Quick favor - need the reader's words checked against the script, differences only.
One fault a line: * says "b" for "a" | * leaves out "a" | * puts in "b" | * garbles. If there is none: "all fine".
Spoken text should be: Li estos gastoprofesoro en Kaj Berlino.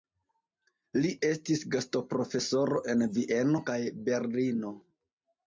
* says "estis" for "estos"
* puts in "Vieno"